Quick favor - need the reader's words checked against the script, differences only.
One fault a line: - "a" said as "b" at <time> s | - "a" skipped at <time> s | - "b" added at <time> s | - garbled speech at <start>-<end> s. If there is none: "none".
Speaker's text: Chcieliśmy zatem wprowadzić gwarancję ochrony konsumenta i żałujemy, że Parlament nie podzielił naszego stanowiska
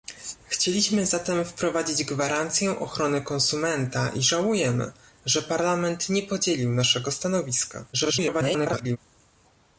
- garbled speech at 7.9-9.0 s